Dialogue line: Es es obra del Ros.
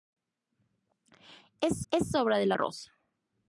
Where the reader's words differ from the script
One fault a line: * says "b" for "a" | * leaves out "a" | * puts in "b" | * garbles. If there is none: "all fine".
all fine